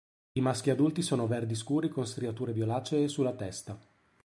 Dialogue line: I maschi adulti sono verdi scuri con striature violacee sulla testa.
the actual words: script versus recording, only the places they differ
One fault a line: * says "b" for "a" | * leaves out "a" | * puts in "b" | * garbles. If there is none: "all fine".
all fine